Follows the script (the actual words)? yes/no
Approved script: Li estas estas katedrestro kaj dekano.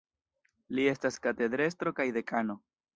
no